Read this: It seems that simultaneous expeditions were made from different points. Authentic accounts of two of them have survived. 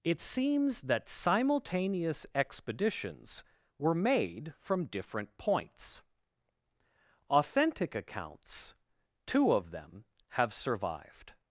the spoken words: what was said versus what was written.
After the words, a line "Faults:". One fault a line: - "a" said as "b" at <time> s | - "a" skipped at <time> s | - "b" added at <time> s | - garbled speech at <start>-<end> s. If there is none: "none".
It seems that simultaneous expeditions were made from different points. Authentic accounts two of them have survived.
Faults:
- "of" skipped at 8.7 s